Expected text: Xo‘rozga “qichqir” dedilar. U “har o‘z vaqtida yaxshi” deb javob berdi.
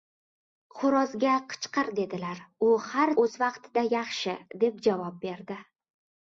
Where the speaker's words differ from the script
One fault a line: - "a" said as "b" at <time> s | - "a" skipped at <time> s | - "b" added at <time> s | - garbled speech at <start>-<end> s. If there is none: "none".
none